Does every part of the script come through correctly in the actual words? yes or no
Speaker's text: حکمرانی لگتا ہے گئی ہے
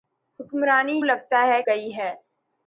yes